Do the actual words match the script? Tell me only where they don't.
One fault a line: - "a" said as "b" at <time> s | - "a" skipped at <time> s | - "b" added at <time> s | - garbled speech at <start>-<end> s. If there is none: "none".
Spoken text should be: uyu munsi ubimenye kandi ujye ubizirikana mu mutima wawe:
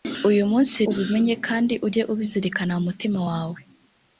none